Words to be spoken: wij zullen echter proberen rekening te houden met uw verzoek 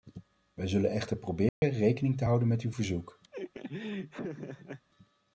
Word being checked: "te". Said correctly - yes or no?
yes